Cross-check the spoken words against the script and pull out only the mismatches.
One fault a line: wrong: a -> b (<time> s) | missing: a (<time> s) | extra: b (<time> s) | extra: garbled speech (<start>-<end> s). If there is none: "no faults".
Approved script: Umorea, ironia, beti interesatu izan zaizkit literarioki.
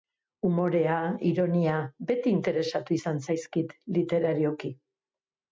no faults